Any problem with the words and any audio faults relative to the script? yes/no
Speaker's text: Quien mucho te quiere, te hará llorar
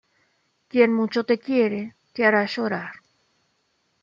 no